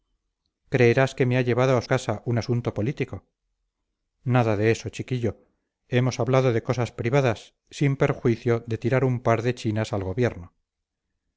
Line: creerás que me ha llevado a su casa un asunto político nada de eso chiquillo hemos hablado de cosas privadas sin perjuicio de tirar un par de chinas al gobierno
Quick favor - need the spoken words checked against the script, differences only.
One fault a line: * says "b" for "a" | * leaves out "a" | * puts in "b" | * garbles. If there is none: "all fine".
* leaves out "su"